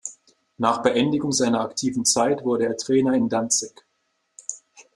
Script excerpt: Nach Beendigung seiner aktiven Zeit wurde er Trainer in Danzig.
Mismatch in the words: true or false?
false